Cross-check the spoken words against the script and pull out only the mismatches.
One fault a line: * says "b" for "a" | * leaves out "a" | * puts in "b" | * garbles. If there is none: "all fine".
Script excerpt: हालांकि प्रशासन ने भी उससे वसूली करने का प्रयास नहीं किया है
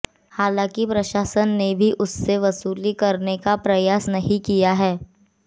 all fine